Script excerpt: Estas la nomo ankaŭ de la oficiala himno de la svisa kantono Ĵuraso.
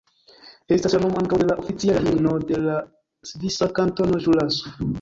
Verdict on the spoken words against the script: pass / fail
pass